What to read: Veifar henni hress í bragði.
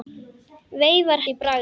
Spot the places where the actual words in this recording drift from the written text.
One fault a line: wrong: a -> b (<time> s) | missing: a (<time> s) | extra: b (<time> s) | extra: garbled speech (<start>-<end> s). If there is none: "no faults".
missing: henni hress (1.2 s)